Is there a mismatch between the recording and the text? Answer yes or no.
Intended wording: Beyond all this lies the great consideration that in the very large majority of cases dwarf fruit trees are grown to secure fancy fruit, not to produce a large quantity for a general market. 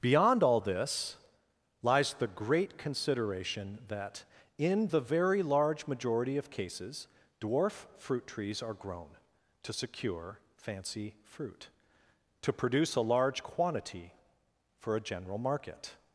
yes